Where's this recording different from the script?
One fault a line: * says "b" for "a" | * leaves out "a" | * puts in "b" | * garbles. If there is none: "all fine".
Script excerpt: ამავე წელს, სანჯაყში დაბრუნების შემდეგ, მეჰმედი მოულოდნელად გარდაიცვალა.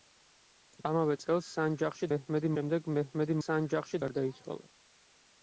* says "მეჰმედი" for "დაბრუნების"
* says "სანჯაყში" for "მოულოდნელად"